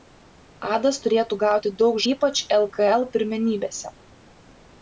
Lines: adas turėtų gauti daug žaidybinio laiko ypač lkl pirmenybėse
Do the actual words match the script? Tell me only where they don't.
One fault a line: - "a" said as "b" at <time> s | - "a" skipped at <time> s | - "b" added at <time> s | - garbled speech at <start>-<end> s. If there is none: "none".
- "žaidybinio laiko" skipped at 2.0 s